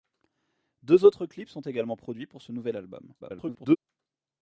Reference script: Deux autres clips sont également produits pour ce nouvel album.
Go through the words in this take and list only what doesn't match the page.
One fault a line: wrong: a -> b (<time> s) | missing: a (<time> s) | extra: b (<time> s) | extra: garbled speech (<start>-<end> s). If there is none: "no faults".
extra: garbled speech (3.2-3.8 s)